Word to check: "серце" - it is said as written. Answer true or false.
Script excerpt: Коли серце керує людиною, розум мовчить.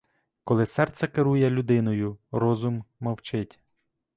true